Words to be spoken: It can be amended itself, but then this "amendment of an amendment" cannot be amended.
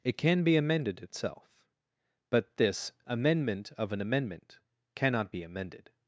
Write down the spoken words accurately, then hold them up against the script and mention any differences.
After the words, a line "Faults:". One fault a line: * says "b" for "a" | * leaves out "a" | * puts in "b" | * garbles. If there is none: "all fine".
It can be amended itself, but this "amendment of an amendment" cannot be amended.
Faults:
* leaves out "then"